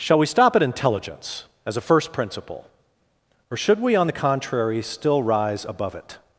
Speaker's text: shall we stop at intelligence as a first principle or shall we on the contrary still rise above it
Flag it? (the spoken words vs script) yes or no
yes